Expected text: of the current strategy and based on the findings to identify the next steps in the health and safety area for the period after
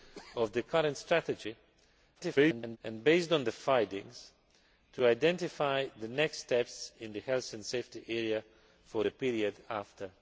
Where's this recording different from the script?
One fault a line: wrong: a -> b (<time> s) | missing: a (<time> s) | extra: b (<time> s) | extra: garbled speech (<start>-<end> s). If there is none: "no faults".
extra: garbled speech (2.1-2.8 s)